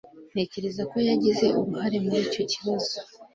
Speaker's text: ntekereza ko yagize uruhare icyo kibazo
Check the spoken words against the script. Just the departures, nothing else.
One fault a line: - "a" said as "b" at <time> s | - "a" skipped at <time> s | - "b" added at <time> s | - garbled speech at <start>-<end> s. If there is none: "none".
- "muri" added at 2.0 s